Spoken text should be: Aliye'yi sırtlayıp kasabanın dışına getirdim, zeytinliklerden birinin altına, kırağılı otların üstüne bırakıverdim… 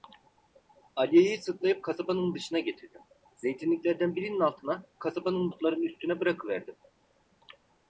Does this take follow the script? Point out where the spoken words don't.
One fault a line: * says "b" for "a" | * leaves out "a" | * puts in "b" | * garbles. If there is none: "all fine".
* says "kasabanın" for "kırağılı"